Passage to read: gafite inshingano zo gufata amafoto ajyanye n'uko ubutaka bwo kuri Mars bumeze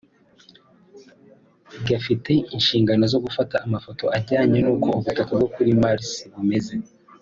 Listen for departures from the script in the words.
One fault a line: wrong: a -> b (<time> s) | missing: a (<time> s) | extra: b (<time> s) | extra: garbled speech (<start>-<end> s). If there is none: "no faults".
no faults